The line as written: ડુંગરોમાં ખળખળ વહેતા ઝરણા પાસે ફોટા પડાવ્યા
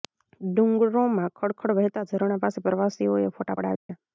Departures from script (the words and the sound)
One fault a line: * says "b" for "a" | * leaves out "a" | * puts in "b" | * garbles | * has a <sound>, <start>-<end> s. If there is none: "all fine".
* puts in "પ્રવાસીઓએ"
* has a dropout, 3.8-3.9 s